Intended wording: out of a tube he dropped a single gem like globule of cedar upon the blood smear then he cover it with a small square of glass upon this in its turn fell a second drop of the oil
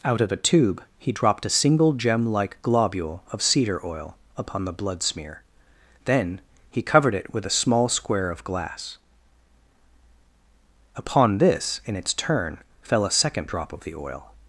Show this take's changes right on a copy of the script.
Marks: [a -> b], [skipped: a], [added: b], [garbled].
out of a tube he dropped a single gem like globule of cedar [added: oil] upon the blood smear then he [cover -> covered] it with a small square of glass upon this in its turn fell a second drop of the oil